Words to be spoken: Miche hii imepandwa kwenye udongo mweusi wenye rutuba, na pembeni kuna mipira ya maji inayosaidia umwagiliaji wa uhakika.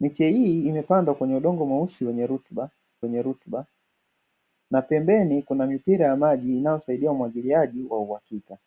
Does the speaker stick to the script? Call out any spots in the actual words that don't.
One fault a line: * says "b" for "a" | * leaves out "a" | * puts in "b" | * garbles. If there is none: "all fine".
* puts in "wenye rutuba"